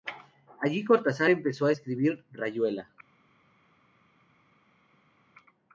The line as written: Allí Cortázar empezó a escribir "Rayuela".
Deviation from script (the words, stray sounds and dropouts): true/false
false